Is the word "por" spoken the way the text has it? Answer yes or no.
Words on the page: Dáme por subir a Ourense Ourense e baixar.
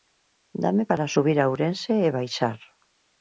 no